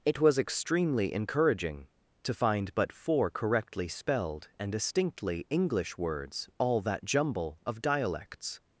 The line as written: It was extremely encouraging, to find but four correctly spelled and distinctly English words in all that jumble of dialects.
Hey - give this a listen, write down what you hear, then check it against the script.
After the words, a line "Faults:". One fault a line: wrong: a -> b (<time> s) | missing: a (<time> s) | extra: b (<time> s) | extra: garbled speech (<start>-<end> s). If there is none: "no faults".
It was extremely encouraging, to find but four correctly spelled and distinctly English words all that jumble of dialects.
Faults:
missing: in (6.5 s)